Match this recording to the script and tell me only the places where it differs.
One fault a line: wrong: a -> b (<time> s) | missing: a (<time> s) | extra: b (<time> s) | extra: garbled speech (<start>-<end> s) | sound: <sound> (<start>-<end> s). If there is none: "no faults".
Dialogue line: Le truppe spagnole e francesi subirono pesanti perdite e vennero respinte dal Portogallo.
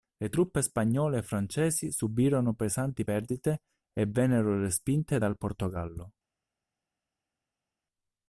no faults